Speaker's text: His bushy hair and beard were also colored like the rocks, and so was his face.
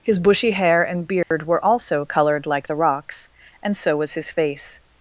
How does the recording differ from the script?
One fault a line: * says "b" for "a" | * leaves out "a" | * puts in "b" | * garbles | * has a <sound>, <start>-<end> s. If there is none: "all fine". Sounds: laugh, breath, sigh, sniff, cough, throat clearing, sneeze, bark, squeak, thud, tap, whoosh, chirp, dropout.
* has a dropout, 1.2-1.3 s